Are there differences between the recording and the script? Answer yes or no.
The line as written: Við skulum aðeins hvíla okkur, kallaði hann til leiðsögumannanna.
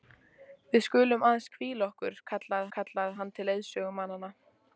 yes